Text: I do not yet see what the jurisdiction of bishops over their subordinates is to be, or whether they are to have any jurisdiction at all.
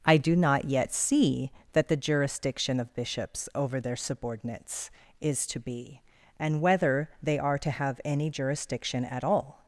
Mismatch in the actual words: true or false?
true